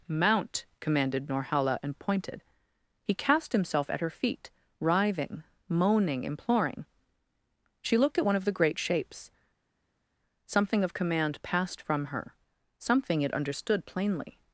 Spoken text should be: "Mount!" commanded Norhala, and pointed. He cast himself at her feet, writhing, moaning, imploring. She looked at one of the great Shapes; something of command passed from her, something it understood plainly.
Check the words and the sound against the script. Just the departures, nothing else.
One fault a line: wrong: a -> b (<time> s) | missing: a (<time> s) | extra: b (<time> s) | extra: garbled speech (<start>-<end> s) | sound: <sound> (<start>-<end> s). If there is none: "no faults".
no faults